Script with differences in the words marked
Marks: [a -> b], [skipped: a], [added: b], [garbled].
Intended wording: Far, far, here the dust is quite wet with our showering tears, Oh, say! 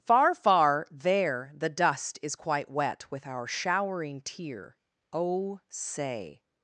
Far, far, [here -> there] the dust is quite wet with our showering [tears, -> tear] Oh, say!